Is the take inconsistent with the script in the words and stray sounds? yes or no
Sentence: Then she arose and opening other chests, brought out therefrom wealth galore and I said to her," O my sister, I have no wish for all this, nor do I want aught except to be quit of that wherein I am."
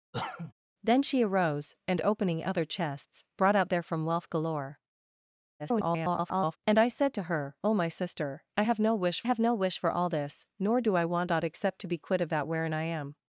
yes